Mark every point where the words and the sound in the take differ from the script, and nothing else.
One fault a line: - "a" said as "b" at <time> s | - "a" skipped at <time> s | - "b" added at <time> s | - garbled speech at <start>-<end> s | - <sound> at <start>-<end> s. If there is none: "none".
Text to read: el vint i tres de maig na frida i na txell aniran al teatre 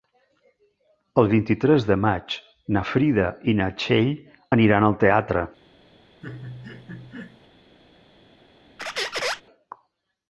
- laugh at 6.2-7.5 s
- squeak at 8.8-9.4 s